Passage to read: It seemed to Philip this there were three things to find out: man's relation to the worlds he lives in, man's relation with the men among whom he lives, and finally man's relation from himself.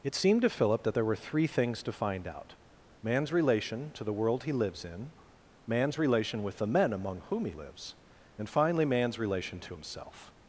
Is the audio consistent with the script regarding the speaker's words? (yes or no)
no